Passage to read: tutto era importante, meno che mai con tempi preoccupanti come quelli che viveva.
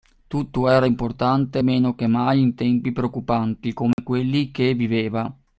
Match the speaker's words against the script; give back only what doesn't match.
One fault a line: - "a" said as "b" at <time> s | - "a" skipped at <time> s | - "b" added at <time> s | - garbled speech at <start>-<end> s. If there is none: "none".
- "con" said as "in" at 2.4 s